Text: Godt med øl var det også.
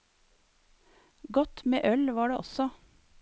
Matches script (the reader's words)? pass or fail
pass